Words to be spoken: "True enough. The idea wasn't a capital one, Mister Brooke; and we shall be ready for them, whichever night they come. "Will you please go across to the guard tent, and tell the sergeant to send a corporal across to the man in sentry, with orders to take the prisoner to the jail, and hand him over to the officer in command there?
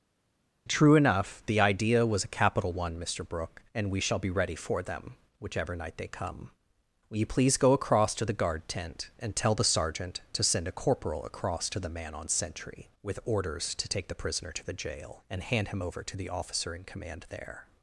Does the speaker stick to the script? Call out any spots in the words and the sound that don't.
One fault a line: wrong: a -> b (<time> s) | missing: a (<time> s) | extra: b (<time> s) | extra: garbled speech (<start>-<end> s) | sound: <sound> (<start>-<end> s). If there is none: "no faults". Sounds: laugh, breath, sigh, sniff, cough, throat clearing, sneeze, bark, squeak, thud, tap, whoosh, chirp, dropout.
wrong: wasn't -> was (2.0 s)
wrong: in -> on (12.2 s)